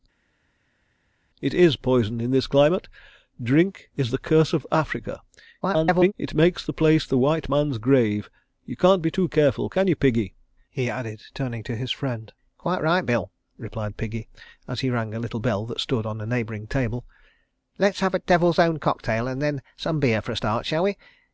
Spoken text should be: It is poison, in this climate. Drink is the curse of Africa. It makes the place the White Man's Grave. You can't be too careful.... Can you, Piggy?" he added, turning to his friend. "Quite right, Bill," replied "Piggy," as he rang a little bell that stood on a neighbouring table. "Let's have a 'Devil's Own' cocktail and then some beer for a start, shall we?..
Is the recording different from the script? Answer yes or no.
yes